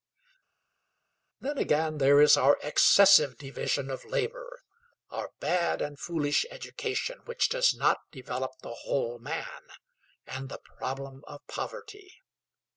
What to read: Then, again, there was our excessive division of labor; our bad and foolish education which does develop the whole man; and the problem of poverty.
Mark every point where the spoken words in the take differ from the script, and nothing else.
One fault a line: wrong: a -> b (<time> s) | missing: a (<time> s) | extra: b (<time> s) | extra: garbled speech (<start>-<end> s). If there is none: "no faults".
wrong: was -> is (2.2 s)
extra: not (7.7 s)